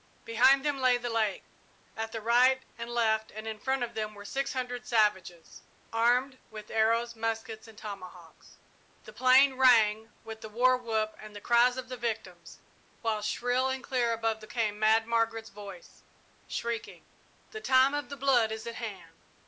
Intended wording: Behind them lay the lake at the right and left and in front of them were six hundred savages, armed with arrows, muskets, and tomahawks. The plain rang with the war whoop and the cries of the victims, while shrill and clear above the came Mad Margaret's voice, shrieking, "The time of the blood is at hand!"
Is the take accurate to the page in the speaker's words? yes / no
yes